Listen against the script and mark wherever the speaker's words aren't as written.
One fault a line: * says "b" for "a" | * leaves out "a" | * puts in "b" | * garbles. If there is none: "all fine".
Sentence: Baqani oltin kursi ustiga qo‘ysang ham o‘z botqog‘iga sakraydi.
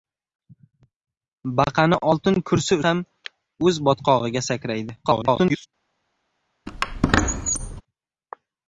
* leaves out "ustiga qo‘ysang"
* garbles